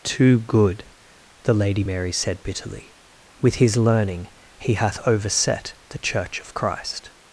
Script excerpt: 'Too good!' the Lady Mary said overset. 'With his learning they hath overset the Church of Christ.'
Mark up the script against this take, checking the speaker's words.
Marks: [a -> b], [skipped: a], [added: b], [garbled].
'Too good!' the Lady Mary said [overset. -> bitterly] 'With his learning [they -> he] hath overset the Church of Christ.'